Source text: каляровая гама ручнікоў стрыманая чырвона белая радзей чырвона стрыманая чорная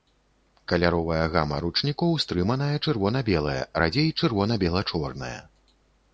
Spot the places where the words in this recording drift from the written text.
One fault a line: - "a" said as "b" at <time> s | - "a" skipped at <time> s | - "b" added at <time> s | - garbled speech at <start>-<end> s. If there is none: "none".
- "стрыманая" said as "бела" at 4.6 s